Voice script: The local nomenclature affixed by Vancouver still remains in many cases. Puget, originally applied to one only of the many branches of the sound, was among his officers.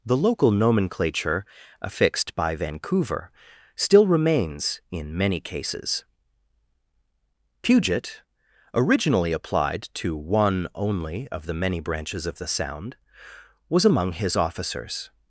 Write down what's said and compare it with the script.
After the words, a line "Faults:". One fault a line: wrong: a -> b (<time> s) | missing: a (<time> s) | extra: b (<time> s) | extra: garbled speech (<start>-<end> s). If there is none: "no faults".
The local nomenclature affixed by Vancouver still remains in many cases. Puget, originally applied to one only of the many branches of the sound, was among his officers.
Faults:
no faults